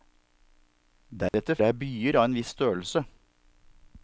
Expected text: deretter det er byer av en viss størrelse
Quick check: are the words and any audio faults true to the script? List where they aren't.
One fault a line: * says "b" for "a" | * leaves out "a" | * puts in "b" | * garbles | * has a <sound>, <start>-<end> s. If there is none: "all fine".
* has a dropout, 1.3-1.3 s